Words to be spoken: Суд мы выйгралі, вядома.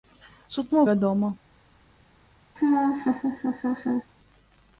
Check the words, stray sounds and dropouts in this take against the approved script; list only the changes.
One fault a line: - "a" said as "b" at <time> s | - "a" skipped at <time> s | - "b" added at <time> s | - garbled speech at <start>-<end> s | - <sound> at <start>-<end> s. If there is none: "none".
- "выйгралі" skipped at 0.8 s
- laugh at 2.6-4.1 s